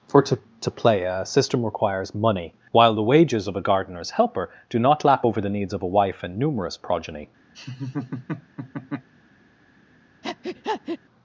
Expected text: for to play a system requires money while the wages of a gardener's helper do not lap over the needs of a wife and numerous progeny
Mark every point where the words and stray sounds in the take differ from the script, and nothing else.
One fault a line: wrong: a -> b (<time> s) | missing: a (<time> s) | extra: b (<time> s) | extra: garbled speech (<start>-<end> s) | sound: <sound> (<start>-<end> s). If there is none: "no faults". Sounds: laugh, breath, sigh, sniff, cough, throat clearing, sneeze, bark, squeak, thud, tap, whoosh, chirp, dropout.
extra: to (0.6 s)
sound: laugh (7.5-9.1 s)
sound: breath (10.2-11.0 s)